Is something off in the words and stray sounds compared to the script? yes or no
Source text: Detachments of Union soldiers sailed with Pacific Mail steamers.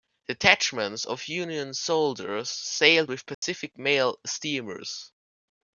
yes